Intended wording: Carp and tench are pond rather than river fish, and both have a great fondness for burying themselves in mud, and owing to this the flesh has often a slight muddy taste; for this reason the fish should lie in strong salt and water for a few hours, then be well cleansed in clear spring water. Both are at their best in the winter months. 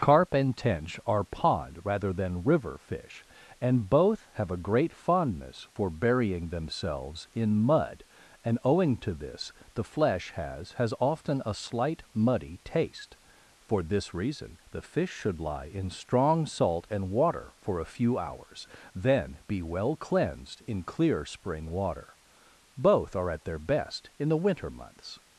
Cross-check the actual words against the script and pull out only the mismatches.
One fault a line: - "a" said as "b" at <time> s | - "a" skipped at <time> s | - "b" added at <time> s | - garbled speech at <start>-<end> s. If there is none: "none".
- "has" added at 10.7 s